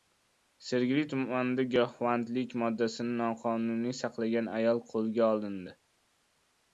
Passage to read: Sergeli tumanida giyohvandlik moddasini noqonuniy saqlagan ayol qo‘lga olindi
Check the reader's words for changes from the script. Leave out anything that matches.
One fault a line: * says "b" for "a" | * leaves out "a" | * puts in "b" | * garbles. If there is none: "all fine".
all fine